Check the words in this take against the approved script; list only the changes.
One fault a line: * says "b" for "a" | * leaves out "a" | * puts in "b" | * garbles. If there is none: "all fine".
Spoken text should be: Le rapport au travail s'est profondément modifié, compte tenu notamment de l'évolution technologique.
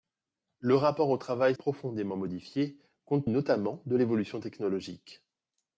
* leaves out "s'est"
* leaves out "tenu"